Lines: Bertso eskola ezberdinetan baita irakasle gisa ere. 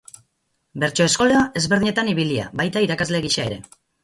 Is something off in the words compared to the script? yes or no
yes